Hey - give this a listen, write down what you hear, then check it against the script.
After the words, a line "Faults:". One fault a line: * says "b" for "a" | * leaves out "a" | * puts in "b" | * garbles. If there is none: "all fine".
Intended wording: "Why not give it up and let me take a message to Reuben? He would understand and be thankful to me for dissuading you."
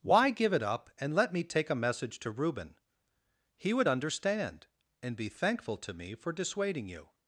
"Why give it up and let me take a message to Reuben? He would understand and be thankful to me for dissuading you."
Faults:
* leaves out "not"